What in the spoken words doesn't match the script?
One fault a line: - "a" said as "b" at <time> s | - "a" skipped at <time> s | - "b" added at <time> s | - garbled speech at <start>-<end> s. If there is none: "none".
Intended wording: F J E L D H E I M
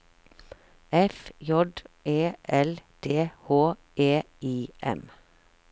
none